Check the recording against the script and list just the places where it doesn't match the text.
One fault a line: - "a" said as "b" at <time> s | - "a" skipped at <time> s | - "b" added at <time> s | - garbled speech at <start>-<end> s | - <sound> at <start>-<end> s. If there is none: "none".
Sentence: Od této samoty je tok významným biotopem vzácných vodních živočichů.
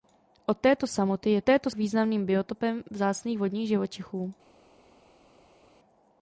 - "tok" said as "této" at 1.4 s